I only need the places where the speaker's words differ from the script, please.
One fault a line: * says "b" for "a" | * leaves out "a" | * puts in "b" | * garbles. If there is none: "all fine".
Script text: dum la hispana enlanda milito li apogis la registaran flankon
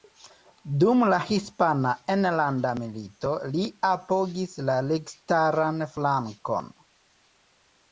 all fine